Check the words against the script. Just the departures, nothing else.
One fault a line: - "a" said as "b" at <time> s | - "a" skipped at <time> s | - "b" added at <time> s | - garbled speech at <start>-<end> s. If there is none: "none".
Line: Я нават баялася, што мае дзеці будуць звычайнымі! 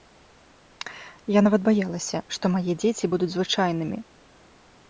none